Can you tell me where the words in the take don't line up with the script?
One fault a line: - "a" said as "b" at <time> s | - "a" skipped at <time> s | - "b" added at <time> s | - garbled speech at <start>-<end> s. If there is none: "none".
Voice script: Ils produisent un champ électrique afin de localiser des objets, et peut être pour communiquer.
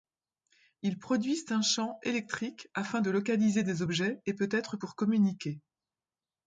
none